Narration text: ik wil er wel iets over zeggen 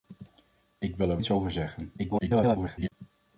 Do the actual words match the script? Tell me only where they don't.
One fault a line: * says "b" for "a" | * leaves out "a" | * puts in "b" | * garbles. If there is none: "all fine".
* leaves out "wel"
* garbles